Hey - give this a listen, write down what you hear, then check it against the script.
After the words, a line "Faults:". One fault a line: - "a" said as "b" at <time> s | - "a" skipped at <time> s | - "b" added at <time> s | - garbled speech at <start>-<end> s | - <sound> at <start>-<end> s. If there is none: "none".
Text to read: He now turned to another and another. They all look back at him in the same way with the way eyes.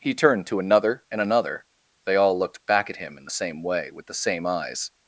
He turned to another and another. They all looked back at him in the same way with the same eyes.
Faults:
- "now" skipped at 0.1 s
- "look" said as "looked" at 2.4 s
- "way" said as "same" at 4.1 s